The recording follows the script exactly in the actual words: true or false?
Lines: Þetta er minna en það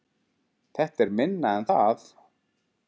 true